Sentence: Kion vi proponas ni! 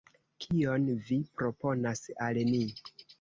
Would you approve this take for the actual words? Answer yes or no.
no